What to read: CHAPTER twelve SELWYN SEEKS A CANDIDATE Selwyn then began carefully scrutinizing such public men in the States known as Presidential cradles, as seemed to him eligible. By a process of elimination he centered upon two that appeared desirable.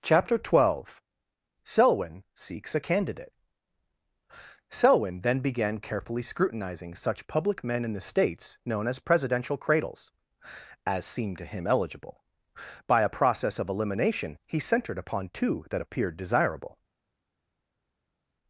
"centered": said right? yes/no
yes